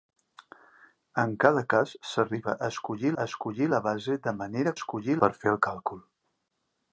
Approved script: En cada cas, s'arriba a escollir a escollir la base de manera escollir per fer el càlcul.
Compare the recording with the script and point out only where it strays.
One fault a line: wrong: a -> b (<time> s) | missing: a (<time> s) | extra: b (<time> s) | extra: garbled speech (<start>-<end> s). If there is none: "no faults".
no faults